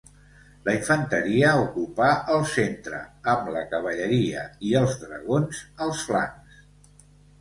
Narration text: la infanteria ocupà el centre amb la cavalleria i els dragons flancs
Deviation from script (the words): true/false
true